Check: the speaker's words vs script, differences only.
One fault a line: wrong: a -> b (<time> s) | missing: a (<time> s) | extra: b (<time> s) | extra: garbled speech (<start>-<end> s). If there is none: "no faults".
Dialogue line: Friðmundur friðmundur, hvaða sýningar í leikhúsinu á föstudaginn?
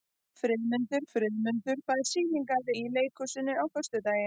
no faults